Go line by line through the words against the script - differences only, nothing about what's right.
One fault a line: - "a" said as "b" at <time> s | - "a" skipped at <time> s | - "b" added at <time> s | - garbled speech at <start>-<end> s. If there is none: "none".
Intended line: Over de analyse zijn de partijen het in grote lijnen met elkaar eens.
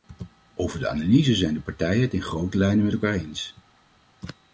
none